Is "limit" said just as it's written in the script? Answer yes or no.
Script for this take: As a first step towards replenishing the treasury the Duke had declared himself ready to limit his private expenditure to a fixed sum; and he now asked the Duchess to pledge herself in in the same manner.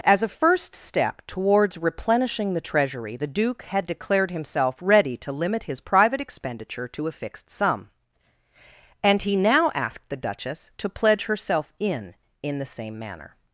yes